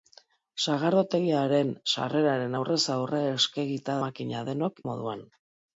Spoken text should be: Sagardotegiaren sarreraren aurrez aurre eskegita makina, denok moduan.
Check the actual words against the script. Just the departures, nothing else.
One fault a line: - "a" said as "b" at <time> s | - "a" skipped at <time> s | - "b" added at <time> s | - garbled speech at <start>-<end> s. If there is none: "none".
none